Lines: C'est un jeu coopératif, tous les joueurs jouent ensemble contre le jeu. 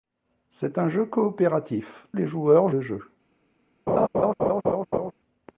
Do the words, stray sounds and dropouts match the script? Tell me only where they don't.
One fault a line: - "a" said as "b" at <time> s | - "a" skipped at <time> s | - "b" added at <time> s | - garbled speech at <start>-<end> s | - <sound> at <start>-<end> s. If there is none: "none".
- "tous" skipped at 2.1 s
- "jouent ensemble contre" skipped at 2.7 s
- laugh at 3.9-5.1 s